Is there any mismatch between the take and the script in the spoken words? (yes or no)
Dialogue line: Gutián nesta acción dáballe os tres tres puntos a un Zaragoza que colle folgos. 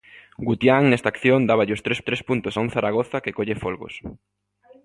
no